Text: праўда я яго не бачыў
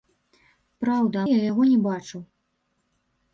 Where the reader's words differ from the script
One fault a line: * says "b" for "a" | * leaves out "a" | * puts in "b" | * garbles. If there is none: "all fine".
all fine